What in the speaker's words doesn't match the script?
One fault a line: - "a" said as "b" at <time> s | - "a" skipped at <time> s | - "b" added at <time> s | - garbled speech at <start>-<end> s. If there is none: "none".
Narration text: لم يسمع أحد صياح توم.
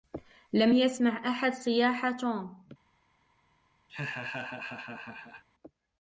none